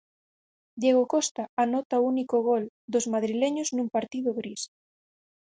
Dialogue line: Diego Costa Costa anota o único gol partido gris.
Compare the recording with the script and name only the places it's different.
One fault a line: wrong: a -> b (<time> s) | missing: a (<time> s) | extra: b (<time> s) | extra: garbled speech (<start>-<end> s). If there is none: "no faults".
missing: Costa (1.4 s)
extra: dos madrileños nun (2.9 s)